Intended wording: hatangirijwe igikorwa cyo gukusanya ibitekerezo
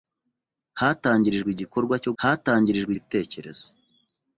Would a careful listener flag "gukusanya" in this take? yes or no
yes